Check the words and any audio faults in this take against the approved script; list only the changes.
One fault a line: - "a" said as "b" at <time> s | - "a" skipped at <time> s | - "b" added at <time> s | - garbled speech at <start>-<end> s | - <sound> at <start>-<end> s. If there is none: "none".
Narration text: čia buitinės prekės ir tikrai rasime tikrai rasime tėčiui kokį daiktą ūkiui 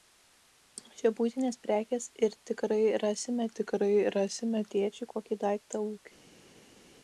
none